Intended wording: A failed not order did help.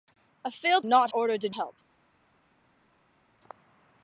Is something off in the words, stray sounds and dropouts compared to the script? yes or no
no